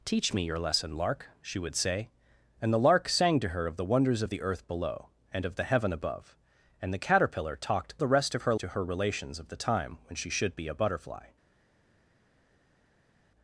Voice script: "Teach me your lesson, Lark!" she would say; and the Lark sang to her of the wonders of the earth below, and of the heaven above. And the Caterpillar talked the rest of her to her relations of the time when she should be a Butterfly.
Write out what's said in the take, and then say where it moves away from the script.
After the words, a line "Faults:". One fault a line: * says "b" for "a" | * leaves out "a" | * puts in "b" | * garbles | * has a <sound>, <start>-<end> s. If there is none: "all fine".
"Teach me your lesson, Lark!" she would say; and the Lark sang to her of the wonders of the earth below, and of the heaven above. And the Caterpillar talked the rest of her to her relations of the time when she should be a Butterfly.
Faults:
all fine